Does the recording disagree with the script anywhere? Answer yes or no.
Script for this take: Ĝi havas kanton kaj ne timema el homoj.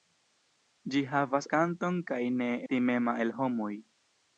no